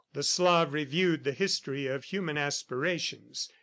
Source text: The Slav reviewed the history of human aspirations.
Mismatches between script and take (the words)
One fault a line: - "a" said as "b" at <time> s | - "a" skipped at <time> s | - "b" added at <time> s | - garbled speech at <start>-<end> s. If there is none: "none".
none